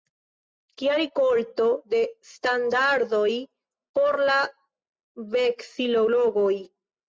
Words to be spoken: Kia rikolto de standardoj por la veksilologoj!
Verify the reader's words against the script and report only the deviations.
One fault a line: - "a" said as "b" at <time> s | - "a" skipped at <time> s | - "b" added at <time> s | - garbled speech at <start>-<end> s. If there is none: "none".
none